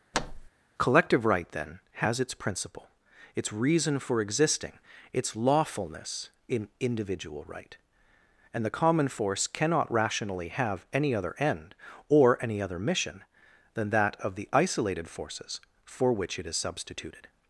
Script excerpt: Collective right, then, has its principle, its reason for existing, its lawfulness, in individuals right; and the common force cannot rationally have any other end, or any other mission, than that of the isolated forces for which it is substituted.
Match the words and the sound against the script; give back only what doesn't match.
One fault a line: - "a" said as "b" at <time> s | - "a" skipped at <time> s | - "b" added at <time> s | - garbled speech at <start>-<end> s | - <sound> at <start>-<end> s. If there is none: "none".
- thud at 0.1-0.5 s
- "individuals" said as "individual" at 6.8 s